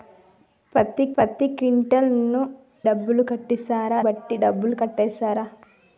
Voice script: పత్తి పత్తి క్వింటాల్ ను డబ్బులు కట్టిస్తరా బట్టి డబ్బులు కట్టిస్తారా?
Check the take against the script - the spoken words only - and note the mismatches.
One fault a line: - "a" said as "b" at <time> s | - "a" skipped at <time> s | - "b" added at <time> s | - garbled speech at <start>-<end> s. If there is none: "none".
none